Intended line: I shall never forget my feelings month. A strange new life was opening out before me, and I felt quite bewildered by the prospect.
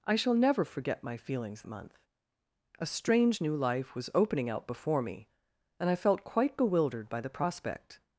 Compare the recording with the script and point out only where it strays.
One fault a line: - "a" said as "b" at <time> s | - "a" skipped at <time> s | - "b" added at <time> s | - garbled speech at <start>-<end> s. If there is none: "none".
none